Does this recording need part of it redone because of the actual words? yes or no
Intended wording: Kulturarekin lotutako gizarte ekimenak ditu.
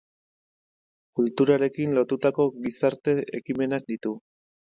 no